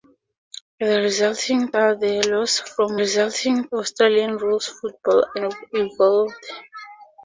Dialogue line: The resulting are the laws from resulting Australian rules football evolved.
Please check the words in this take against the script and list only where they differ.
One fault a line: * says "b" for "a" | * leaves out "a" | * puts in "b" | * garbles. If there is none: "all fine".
all fine